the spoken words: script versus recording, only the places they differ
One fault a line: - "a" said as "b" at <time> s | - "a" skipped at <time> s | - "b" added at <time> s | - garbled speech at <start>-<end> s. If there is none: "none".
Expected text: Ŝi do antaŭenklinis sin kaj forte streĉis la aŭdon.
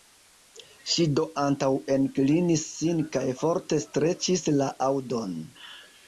none